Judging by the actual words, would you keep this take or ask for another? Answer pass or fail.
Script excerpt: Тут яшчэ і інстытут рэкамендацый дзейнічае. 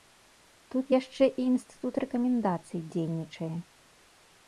pass